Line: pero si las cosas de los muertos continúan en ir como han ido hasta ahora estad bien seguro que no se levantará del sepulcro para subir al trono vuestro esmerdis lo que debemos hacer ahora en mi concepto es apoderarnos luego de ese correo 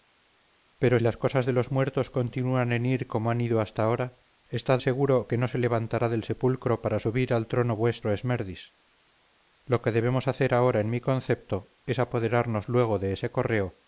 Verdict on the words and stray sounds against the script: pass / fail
fail